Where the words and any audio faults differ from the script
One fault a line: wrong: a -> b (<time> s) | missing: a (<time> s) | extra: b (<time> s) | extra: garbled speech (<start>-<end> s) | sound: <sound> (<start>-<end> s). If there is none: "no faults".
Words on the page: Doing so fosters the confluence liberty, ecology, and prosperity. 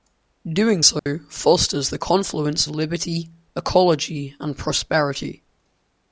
sound: dropout (1.0-1.1 s)